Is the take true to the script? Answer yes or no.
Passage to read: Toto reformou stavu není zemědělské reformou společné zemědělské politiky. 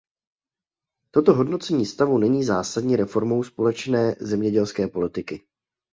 no